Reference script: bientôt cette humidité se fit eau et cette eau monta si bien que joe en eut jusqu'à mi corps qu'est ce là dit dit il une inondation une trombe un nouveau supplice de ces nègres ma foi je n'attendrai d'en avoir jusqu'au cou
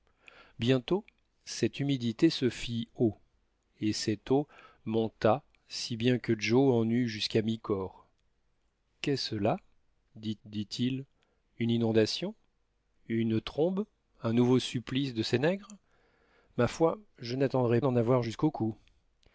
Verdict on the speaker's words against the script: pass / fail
pass